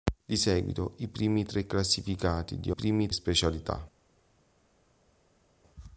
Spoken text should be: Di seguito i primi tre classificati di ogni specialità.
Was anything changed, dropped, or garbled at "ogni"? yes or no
yes